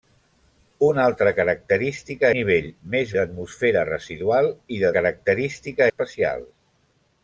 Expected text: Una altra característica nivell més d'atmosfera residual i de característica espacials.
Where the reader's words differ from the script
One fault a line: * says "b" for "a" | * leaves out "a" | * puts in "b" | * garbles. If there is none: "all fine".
all fine